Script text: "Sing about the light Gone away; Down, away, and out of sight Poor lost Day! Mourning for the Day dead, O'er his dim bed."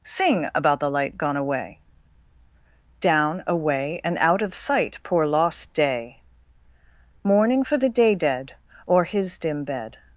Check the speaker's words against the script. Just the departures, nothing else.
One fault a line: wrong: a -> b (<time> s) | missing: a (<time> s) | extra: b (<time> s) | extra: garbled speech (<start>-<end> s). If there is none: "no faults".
no faults